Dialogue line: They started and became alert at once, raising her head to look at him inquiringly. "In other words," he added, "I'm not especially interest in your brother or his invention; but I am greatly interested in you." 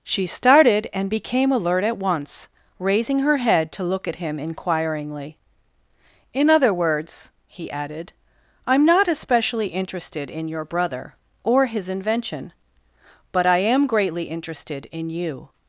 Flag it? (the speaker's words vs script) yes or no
yes